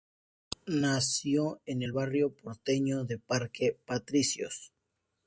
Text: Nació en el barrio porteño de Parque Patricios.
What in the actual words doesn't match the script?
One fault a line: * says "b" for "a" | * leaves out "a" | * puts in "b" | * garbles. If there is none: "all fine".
all fine